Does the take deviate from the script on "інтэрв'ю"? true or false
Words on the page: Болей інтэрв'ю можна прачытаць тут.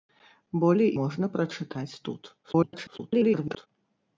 true